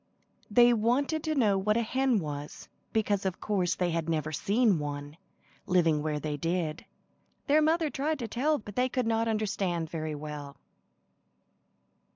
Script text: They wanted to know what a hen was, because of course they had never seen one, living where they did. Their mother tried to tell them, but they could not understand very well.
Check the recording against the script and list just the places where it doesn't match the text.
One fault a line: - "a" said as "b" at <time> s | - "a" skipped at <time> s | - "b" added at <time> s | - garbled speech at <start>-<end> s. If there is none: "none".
- "them" skipped at 8.6 s